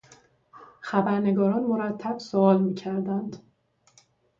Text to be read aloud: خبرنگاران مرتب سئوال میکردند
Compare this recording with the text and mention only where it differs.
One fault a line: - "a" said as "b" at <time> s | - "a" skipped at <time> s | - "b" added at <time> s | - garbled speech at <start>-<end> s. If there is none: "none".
none